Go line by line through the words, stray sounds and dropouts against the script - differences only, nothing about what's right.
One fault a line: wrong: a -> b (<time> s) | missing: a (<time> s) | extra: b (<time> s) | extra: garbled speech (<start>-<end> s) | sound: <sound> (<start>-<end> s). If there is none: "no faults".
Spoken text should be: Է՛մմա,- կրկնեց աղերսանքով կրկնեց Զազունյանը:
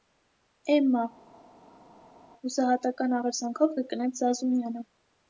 wrong: կրկնեց -> հուսահատական (2.4 s)